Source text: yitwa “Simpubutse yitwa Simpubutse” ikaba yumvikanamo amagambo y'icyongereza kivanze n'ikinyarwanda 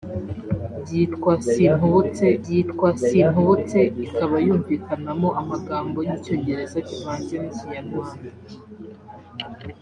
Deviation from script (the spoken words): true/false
false